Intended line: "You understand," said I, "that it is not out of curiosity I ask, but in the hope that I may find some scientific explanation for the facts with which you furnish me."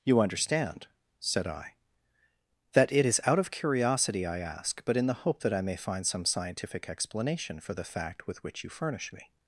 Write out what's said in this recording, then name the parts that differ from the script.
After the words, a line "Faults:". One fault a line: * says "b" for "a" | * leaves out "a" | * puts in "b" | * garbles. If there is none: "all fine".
"You understand," said I, "that it is out of curiosity I ask, but in the hope that I may find some scientific explanation for the fact with which you furnish me."
Faults:
* leaves out "not"
* says "fact" for "facts"